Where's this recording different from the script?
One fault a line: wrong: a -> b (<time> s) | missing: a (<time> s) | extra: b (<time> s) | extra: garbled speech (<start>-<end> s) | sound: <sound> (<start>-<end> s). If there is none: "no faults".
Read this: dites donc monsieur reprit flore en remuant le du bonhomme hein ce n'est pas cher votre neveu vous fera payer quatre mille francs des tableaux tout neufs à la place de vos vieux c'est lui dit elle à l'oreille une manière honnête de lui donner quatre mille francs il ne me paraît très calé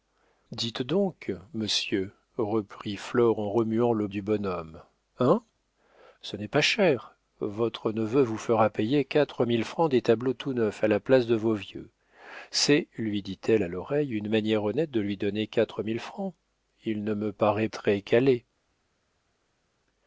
no faults